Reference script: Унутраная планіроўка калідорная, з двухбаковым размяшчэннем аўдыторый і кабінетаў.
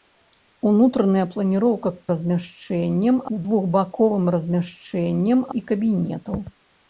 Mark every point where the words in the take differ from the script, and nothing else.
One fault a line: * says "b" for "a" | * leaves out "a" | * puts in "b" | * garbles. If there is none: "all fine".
* says "размяшчэннем" for "калідорная"
* leaves out "аўдыторый"